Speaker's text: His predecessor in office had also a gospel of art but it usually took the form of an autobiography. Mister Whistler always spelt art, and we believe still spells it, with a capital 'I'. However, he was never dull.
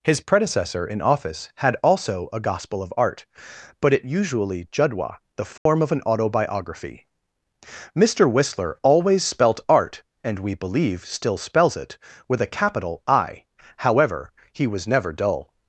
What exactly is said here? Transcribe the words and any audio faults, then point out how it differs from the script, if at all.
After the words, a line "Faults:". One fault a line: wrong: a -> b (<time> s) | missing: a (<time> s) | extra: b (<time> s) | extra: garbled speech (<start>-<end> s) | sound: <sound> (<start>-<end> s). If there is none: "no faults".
His predecessor in office had also a gospel of art but it usually judwa the form of an autobiography. Mister Whistler always spelt art, and we believe still spells it, with a capital 'I'. However, he was never dull.
Faults:
wrong: took -> judwa (4.7 s)
sound: dropout (5.6-5.7 s)